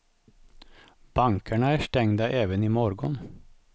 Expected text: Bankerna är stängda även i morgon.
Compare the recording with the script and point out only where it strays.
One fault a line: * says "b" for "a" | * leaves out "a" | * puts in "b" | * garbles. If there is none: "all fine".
all fine